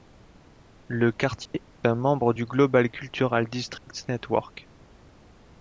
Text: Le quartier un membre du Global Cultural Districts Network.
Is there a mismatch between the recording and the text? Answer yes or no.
no